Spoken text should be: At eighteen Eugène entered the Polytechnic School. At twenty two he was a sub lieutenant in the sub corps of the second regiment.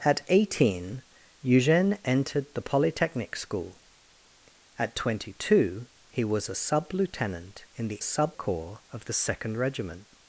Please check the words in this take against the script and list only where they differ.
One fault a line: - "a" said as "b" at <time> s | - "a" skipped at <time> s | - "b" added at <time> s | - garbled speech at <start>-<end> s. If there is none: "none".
none